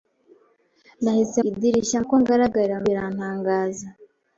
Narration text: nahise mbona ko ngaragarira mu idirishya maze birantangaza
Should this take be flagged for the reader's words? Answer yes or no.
yes